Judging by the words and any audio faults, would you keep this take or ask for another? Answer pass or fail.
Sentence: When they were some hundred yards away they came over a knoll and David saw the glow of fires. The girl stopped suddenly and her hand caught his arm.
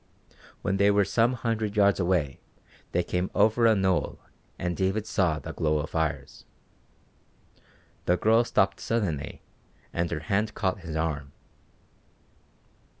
pass